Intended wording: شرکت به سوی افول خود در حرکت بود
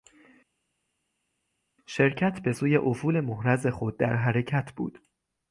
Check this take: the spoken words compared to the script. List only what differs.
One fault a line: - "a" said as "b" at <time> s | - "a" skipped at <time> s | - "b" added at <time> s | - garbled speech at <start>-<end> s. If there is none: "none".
- "محرز" added at 3.2 s